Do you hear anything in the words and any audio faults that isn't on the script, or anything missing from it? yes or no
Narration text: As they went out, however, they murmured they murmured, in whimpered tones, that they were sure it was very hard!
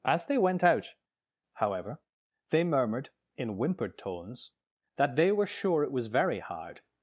yes